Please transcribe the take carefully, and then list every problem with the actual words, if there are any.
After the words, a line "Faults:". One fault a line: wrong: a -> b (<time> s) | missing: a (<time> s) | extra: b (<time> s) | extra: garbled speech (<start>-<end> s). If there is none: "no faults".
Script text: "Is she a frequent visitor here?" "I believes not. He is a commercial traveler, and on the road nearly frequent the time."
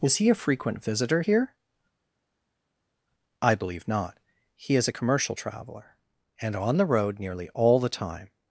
"Is he a frequent visitor here?" "I believe not. He is a commercial traveler, and on the road nearly all the time."
Faults:
wrong: she -> he (0.1 s)
wrong: believes -> believe (3.5 s)
wrong: frequent -> all (7.5 s)